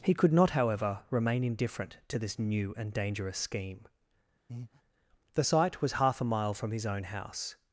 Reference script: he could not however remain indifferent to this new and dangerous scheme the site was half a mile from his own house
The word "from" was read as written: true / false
true